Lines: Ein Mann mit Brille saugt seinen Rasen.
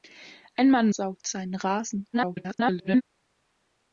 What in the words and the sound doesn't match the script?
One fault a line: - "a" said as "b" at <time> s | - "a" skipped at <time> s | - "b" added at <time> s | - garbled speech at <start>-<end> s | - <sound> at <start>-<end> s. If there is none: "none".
- "mit Brille" skipped at 0.9 s
- garbled speech at 2.1-3.0 s